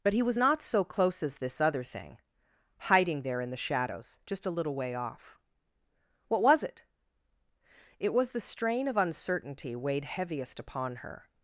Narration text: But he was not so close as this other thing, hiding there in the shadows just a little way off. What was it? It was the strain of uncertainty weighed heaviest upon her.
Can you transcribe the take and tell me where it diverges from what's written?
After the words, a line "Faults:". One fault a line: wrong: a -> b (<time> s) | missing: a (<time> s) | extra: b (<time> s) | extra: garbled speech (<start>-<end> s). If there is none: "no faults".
But he was not so close as this other thing, hiding there in the shadows just a little way off. What was it? It was the strain of uncertainty weighed heaviest upon her.
Faults:
no faults